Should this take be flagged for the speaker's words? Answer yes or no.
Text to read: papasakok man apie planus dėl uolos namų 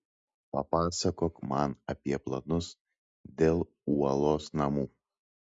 no